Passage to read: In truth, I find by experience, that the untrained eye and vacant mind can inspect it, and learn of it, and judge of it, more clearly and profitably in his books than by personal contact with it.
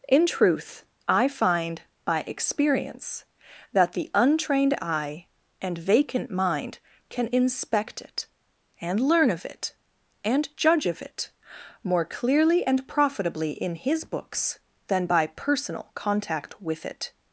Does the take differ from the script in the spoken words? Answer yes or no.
no